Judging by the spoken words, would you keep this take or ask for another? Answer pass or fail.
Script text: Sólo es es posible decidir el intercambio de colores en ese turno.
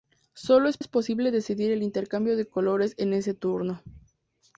pass